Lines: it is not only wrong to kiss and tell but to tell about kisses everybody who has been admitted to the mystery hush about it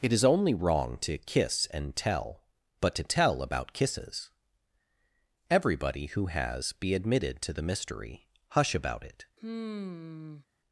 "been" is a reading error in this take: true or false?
true